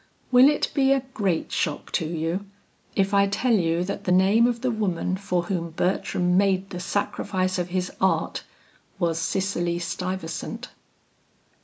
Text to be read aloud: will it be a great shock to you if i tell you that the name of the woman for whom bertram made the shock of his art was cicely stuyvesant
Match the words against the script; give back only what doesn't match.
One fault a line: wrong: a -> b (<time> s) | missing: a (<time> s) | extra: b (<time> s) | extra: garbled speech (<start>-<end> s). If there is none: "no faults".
wrong: shock -> sacrifice (6.8 s)